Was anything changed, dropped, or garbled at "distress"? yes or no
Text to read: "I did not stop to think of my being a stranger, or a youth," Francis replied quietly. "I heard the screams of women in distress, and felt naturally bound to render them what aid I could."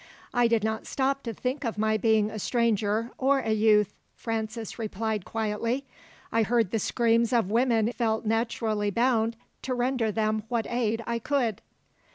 yes